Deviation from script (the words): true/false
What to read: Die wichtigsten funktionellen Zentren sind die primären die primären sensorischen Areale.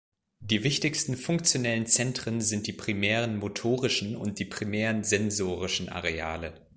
true